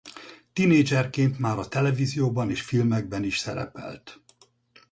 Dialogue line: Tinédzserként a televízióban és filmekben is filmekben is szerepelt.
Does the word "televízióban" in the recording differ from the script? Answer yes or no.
no